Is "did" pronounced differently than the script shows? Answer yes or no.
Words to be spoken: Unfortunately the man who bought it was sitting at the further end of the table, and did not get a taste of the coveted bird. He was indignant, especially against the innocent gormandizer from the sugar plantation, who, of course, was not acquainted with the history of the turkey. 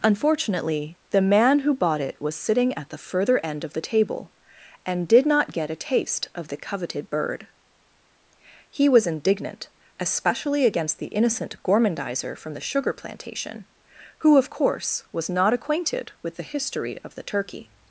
no